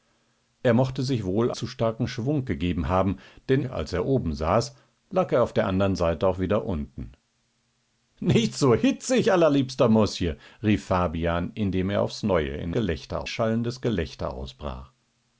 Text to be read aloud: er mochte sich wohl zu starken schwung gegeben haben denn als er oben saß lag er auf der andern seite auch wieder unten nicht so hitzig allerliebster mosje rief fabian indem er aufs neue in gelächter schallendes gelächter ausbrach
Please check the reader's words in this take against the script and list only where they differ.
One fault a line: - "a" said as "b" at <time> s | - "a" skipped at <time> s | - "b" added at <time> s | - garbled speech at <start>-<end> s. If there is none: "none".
none